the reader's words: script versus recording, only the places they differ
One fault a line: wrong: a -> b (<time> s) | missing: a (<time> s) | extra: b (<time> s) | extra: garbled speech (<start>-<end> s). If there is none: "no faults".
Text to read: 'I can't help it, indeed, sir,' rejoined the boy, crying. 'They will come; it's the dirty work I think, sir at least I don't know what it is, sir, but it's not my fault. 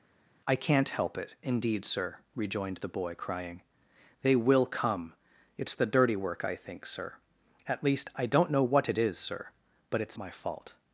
missing: not (10.2 s)